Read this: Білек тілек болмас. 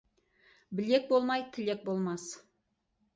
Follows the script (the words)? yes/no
no